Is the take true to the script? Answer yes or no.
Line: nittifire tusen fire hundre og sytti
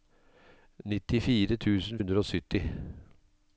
no